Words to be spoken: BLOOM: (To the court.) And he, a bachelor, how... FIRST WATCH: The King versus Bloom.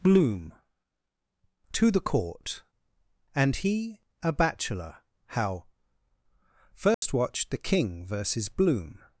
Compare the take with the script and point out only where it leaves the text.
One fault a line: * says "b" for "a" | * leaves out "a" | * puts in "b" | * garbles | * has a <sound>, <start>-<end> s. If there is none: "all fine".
* has a dropout, 6.9-7.0 s